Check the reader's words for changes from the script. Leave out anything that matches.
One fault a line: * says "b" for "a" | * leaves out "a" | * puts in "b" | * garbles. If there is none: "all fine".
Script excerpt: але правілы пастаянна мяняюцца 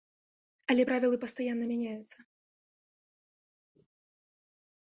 all fine